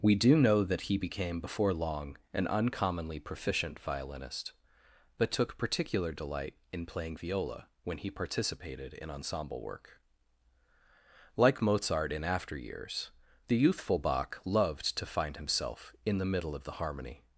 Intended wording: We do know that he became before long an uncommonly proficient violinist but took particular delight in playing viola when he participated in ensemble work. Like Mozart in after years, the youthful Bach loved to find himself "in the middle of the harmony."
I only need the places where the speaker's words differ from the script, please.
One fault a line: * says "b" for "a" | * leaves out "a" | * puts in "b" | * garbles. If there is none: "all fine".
all fine